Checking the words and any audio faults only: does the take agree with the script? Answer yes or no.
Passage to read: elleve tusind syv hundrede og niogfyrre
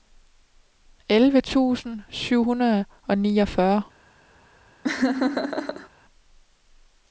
no